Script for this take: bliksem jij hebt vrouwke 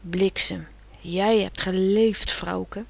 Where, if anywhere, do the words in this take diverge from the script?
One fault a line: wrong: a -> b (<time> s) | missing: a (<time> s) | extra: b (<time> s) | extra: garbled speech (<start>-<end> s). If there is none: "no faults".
extra: geleefd (1.6 s)